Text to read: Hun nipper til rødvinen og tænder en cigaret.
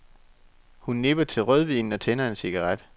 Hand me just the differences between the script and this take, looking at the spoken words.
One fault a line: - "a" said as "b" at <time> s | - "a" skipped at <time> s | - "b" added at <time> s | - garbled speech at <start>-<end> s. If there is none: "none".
none